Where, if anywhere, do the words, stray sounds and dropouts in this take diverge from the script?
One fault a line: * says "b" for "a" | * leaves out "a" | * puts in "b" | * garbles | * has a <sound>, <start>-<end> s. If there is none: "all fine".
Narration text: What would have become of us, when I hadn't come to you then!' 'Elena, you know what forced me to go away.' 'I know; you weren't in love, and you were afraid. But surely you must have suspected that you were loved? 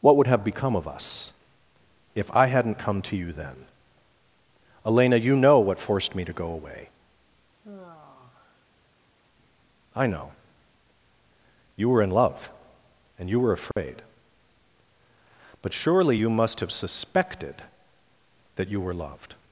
* says "if" for "when"
* has a sigh, 7.6-9.1 s
* says "were" for "weren't"
* has a dropout, 13.7-13.8 s